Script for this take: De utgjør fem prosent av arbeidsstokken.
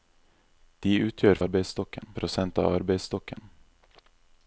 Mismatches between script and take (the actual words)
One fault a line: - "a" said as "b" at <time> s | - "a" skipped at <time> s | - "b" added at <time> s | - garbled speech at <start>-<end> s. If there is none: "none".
- "fem" said as "arbeidsstokken" at 1.4 s